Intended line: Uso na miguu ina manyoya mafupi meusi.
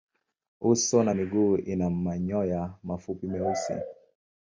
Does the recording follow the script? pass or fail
pass